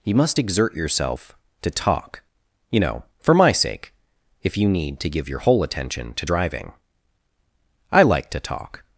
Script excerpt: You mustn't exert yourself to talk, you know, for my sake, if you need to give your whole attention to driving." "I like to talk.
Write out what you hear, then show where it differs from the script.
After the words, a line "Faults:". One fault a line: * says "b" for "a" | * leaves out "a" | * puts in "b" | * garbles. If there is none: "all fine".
You must exert yourself to talk, you know, for my sake, if you need to give your whole attention to driving." "I like to talk.
Faults:
* says "must" for "mustn't"